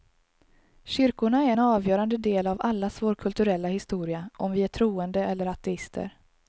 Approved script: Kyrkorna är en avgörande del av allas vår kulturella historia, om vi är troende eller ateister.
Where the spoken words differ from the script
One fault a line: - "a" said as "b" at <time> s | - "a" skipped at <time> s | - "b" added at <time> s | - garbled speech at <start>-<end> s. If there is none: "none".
none